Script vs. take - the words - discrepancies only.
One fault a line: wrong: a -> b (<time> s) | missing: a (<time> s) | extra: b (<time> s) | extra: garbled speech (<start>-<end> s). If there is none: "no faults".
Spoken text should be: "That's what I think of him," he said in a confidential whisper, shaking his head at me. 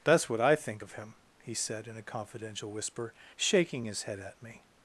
no faults